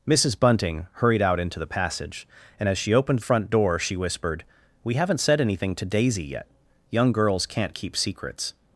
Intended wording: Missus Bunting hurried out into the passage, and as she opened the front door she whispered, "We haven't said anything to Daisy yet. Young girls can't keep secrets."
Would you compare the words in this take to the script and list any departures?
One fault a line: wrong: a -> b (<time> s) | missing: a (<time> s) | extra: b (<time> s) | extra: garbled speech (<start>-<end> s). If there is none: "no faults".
missing: the (3.2 s)